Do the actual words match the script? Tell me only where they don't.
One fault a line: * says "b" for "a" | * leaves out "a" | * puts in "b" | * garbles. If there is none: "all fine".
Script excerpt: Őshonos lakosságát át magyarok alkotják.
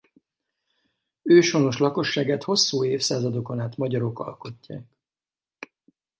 * puts in "hosszú évszázadokon"